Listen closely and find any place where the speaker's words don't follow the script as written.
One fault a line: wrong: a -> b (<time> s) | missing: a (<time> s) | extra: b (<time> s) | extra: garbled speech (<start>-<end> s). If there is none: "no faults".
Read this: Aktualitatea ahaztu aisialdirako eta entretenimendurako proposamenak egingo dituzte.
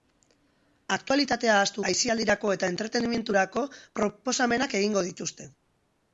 no faults